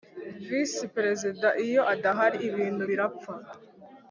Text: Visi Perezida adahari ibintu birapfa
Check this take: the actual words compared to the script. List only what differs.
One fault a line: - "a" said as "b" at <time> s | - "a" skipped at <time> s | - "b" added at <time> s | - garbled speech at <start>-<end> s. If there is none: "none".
- "iyo" added at 1.6 s